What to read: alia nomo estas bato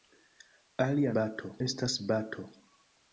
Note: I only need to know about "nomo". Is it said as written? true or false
false